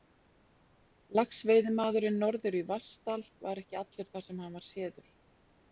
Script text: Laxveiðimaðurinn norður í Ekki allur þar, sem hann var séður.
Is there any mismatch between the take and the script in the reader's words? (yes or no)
yes